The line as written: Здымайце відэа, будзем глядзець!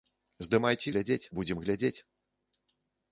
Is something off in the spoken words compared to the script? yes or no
yes